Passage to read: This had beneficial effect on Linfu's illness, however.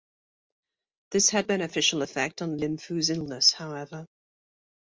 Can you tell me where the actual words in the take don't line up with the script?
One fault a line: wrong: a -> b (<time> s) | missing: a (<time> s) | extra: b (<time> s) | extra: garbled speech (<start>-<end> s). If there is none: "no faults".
no faults